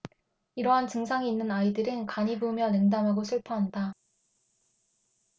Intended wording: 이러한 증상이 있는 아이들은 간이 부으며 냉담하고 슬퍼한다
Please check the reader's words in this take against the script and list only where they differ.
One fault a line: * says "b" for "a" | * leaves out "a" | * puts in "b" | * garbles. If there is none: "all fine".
all fine